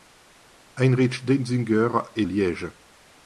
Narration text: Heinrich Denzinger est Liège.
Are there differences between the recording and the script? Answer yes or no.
no